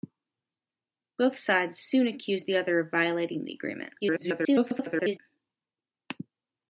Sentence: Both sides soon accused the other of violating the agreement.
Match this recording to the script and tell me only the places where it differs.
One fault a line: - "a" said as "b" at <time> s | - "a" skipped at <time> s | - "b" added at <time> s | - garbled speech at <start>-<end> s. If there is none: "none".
- garbled speech at 4.0-5.2 s